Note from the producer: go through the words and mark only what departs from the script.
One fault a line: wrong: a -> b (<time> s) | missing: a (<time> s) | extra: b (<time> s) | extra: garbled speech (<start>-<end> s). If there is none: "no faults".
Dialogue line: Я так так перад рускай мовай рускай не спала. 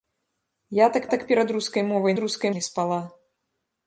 no faults